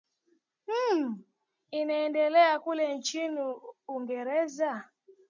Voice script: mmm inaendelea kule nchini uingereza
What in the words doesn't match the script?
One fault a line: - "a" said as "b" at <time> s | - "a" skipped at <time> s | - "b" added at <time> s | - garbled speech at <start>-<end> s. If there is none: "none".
none